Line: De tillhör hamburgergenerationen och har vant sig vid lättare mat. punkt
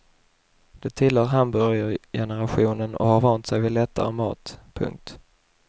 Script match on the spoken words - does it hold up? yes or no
yes